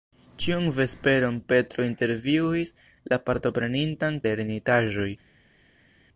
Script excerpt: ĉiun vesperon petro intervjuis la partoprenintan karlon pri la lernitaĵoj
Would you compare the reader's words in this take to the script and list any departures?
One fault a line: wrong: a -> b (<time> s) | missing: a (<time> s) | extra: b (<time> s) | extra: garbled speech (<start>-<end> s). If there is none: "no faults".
missing: karlon pri la (4.2 s)